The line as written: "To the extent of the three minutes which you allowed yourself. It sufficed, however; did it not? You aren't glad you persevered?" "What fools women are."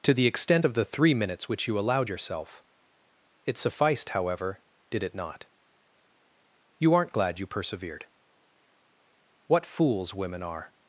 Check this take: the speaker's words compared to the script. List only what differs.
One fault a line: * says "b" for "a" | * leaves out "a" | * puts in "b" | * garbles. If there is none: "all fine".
all fine